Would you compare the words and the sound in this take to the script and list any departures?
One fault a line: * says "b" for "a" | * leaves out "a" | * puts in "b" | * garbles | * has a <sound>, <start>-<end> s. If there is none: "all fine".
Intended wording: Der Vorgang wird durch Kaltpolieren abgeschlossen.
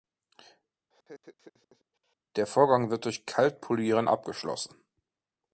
* has a laugh, 0.9-2.2 s